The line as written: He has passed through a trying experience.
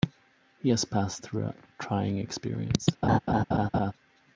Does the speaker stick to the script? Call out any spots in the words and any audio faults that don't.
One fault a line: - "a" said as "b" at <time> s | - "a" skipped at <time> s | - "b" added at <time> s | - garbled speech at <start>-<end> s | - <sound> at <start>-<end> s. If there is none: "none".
- laugh at 3.0-3.9 s